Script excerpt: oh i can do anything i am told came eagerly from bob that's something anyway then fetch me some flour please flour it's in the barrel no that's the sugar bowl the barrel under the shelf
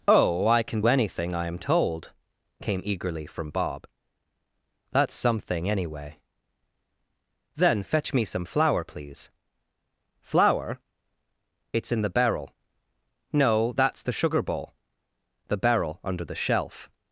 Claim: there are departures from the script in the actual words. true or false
true